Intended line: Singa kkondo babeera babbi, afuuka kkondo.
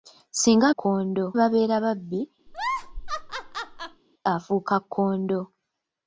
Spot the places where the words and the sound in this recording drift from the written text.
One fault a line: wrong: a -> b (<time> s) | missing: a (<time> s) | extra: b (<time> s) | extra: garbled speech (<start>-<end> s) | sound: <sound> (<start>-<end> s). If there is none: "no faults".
sound: laugh (2.5-4.0 s)